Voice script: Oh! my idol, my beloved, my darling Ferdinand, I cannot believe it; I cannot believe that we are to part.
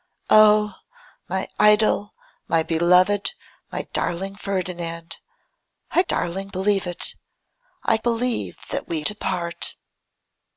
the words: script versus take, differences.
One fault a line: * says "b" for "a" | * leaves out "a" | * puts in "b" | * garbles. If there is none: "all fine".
* says "darling" for "cannot"
* leaves out "cannot"
* leaves out "are"